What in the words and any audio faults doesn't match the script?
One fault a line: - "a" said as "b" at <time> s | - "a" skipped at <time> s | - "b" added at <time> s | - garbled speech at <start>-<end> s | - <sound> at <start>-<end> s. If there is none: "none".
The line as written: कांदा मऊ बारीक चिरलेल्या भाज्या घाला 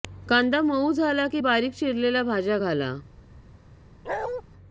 - "झाला की" added at 0.9 s
- bark at 4.0-4.4 s